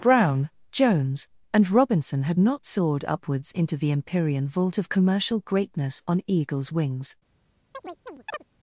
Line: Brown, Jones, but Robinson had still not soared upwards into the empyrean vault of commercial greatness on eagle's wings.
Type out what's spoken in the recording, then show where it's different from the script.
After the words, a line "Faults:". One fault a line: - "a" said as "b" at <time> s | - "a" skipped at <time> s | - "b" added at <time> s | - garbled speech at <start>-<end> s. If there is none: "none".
Brown, Jones, and Robinson had not soared upwards into the empyrean vault of commercial greatness on eagle's wings.
Faults:
- "but" said as "and" at 1.5 s
- "still" skipped at 2.4 s